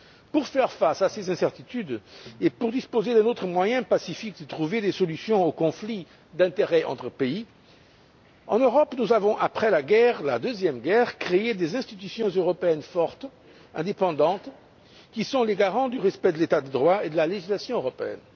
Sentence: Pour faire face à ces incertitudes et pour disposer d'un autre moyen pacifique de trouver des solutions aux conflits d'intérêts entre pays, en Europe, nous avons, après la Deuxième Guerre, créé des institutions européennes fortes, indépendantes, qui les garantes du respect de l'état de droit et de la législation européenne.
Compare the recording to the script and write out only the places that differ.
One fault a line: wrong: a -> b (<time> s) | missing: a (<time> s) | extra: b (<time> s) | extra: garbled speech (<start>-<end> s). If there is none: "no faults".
extra: sont (15.2 s)